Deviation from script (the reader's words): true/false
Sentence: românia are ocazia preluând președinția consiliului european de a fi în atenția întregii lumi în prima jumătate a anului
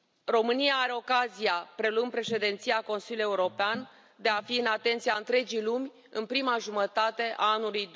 false